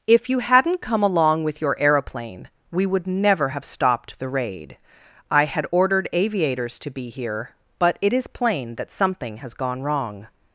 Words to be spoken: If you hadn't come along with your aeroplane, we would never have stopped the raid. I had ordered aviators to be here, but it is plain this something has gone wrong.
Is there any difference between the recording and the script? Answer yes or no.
yes